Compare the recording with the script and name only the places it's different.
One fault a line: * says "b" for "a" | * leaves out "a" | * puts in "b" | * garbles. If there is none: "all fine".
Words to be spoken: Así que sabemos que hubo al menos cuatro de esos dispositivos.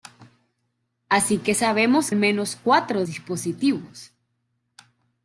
* leaves out "que hubo al"
* leaves out "de esos"